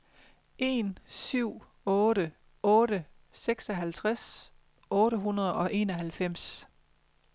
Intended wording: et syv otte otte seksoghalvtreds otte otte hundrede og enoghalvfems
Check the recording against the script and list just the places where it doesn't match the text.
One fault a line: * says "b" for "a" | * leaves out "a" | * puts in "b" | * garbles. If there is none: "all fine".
* says "en" for "et"
* leaves out "otte"